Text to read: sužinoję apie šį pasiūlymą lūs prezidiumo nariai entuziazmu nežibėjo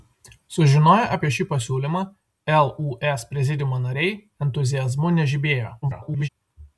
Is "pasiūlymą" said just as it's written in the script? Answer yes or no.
yes